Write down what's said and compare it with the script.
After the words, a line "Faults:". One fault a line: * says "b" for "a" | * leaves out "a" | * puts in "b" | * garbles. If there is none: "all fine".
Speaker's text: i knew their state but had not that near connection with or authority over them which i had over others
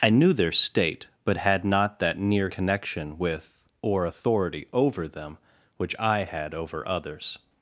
i knew their state but had not that near connection with or authority over them which i had over others
Faults:
all fine